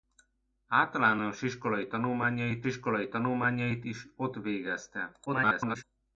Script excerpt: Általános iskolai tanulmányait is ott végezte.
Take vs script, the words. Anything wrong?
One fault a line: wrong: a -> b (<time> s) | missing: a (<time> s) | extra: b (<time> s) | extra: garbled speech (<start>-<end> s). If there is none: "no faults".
extra: iskolai tanulmányait (2.6 s)
extra: garbled speech (5.3-5.8 s)